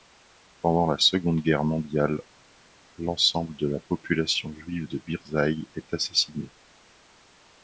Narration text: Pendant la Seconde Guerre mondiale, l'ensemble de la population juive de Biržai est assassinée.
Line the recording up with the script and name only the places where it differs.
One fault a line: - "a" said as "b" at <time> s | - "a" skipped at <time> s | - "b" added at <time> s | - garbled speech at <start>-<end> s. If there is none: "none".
none